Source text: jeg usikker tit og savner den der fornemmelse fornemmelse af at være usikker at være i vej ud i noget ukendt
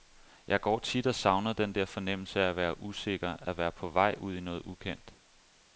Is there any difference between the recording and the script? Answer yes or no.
yes